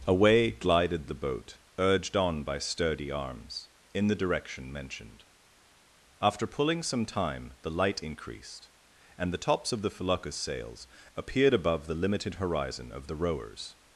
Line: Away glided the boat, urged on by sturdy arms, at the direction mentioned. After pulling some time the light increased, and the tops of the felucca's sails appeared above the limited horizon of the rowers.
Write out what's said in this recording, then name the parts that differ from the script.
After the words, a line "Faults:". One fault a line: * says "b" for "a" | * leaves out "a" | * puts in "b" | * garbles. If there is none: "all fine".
Away glided the boat, urged on by sturdy arms, in the direction mentioned. After pulling some time the light increased, and the tops of the felucca's sails appeared above the limited horizon of the rowers.
Faults:
* says "in" for "at"